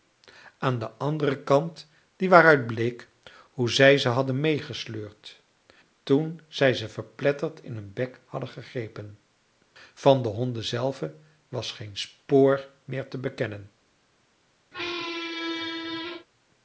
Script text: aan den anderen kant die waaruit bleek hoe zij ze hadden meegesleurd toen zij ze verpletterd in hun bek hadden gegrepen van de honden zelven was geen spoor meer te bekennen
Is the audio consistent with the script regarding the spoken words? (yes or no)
yes